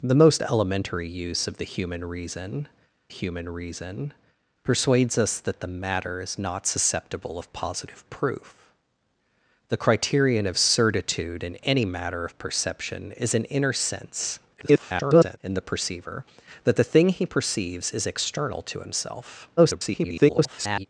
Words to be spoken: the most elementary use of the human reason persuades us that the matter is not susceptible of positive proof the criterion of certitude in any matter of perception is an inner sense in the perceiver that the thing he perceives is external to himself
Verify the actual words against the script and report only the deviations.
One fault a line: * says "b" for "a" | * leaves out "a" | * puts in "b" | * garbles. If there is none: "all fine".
* puts in "human reason"
* garbles
* garbles